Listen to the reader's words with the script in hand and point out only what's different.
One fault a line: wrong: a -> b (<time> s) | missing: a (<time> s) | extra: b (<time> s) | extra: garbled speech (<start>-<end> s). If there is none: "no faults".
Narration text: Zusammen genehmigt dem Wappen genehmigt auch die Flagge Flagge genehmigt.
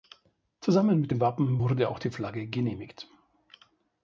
wrong: genehmigt -> mit (1.0 s)
wrong: genehmigt -> wurde (1.6 s)
missing: Flagge (2.5 s)